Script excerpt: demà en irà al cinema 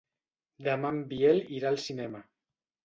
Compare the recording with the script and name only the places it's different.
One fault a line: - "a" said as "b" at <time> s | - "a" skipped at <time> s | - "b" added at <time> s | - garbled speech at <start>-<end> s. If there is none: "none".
- "biel" added at 1.1 s